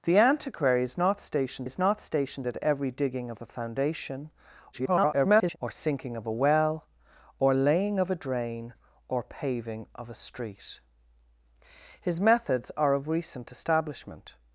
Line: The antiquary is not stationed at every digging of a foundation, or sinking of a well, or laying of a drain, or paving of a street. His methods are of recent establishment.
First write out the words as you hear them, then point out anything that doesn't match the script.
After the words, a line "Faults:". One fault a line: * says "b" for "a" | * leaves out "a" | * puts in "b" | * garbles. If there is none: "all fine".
The antiquary is not stationed is not stationed at every digging of a foundation, [garbled] or sinking of a well, or laying of a drain, or paving of a street. His methods are of recent establishment.
Faults:
* puts in "is not stationed"
* garbles